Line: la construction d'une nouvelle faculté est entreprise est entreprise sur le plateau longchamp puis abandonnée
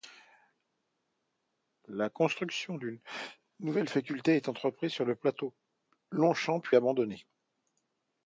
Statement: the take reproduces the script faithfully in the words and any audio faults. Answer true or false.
false